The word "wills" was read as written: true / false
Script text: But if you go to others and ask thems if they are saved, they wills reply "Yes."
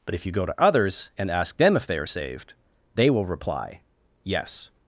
false